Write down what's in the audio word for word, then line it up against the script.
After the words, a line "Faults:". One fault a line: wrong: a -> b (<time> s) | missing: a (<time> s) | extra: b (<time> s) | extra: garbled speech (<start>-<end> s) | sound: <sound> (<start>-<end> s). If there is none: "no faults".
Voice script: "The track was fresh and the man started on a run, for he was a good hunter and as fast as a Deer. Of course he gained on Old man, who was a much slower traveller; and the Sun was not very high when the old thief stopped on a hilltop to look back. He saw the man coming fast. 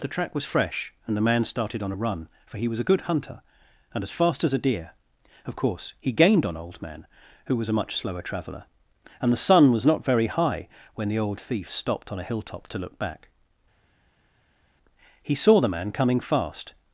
"The track was fresh and the man started on a run, for he was a good hunter and as fast as a Deer. Of course he gained on Old man, who was a much slower traveller; and the Sun was not very high when the old thief stopped on a hilltop to look back. He saw the man coming fast.
Faults:
no faults